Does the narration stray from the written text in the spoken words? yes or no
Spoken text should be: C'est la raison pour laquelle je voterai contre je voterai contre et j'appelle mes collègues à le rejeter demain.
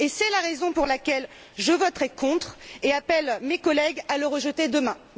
yes